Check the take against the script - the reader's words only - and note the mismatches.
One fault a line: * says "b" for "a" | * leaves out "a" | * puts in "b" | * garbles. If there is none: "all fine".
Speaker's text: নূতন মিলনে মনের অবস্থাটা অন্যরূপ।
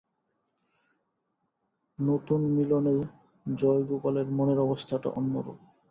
* puts in "জয়গোপালের"